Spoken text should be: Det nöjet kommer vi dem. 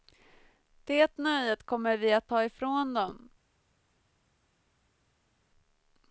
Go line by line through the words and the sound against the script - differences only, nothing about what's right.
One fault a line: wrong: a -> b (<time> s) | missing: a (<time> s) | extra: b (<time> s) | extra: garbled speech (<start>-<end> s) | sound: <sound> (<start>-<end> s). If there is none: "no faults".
extra: att ta ifrån (2.1 s)